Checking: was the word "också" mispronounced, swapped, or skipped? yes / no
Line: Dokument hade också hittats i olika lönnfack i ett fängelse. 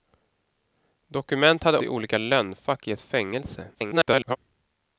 yes